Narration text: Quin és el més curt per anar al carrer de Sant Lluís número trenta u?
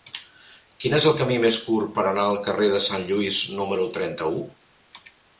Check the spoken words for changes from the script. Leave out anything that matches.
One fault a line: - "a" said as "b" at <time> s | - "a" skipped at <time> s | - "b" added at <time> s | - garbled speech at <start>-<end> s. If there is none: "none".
- "camí" added at 1.2 s